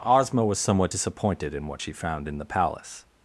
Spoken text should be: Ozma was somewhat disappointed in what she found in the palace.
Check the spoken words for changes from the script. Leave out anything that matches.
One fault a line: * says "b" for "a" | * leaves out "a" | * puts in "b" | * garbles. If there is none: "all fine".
all fine